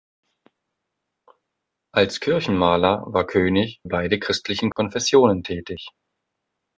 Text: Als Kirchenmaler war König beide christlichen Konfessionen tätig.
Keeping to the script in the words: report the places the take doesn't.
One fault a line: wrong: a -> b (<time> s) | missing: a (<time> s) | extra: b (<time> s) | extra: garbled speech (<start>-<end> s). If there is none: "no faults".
no faults